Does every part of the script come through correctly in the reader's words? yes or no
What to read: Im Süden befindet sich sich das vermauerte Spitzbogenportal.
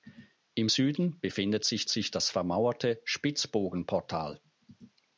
yes